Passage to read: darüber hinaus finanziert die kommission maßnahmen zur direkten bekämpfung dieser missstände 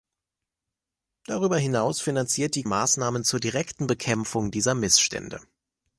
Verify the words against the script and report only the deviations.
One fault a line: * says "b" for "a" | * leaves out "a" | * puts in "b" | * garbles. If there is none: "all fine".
* leaves out "kommission"